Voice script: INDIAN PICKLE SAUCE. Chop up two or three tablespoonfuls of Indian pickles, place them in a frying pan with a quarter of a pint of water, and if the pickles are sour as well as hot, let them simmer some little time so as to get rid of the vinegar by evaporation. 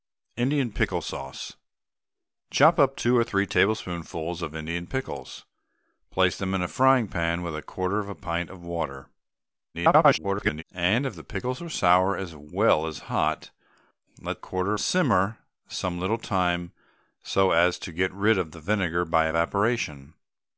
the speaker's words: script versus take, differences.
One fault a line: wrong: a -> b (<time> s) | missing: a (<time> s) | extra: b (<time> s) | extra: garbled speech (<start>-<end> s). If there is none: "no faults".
extra: garbled speech (9.7-10.6 s)
wrong: them -> quarter (14.4 s)